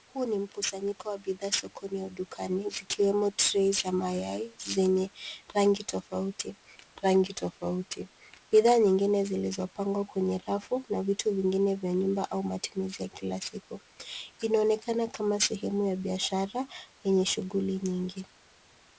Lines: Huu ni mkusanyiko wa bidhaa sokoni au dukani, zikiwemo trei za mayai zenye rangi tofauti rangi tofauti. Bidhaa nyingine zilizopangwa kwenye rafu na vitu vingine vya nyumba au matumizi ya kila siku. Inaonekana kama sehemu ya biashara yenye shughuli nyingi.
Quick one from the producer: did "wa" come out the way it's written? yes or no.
yes